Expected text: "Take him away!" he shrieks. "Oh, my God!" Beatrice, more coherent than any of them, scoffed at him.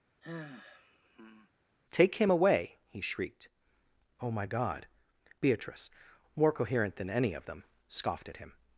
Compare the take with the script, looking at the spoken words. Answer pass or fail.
fail